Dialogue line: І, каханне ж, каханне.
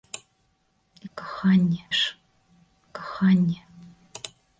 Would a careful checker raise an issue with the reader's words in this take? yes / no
no